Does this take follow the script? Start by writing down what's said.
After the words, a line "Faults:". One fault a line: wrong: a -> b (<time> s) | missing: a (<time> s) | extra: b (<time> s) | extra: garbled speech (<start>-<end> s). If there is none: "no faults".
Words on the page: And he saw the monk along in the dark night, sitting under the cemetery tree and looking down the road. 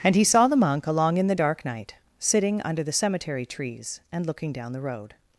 And he saw the monk along in the dark night, sitting under the cemetery trees and looking down the road.
Faults:
wrong: tree -> trees (3.5 s)